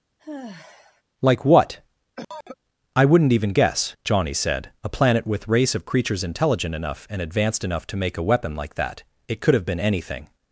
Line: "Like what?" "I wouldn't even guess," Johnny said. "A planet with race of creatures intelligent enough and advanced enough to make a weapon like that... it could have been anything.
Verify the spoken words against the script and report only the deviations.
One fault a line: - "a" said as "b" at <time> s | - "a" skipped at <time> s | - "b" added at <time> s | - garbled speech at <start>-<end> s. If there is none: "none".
none